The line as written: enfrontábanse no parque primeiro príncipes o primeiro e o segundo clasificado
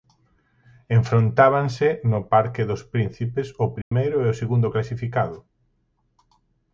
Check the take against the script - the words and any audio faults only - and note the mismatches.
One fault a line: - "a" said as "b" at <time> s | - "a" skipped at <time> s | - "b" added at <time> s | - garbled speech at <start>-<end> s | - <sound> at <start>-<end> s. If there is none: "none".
- "primeiro" said as "dos" at 2.7 s
- dropout at 3.8-3.9 s